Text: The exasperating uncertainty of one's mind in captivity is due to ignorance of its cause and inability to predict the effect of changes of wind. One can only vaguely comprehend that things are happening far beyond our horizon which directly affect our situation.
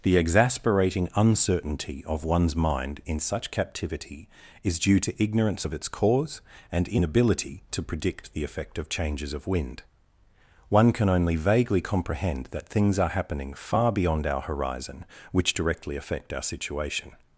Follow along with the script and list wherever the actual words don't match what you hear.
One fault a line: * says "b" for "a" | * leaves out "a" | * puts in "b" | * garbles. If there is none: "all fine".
* puts in "such"